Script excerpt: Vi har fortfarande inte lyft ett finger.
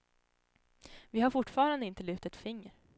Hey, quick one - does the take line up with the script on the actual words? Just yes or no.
yes